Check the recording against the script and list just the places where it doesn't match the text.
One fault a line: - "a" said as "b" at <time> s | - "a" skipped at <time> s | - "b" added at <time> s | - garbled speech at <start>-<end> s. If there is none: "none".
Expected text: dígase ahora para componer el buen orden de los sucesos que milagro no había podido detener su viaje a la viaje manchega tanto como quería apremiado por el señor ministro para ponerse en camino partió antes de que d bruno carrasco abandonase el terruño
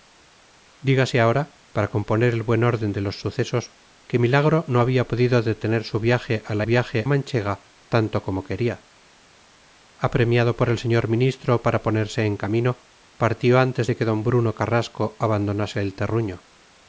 none